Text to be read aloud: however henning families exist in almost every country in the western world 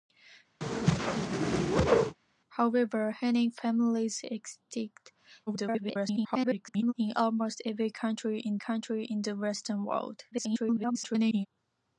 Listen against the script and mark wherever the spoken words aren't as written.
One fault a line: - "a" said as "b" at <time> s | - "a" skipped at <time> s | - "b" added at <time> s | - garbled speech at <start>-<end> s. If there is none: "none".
- garbled speech at 5.5-6.9 s
- "country in" added at 8.6 s
- garbled speech at 10.3-11.5 s